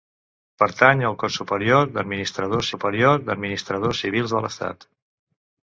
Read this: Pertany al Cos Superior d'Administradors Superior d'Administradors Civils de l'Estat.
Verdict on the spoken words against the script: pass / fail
pass